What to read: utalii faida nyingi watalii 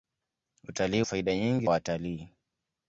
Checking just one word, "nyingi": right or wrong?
right